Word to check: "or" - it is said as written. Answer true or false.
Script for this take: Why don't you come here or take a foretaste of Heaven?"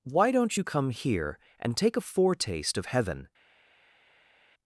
false